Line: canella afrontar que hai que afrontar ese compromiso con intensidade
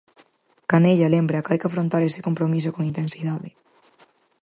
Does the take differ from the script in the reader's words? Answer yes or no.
yes